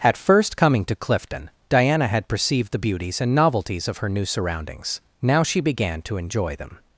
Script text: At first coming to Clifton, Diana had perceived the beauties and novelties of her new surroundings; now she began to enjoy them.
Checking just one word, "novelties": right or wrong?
right